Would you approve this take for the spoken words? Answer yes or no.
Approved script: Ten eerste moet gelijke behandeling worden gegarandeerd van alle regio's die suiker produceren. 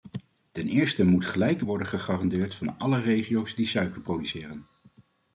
no